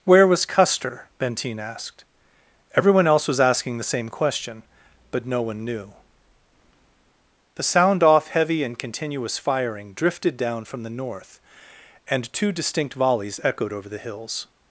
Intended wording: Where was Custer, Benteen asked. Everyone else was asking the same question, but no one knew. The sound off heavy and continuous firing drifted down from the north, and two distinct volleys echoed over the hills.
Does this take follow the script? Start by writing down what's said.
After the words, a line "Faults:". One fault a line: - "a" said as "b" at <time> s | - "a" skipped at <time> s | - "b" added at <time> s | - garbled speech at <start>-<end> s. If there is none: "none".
Where was Custer, Benteen asked. Everyone else was asking the same question, but no one knew. The sound off heavy and continuous firing drifted down from the north, and two distinct volleys echoed over the hills.
Faults:
none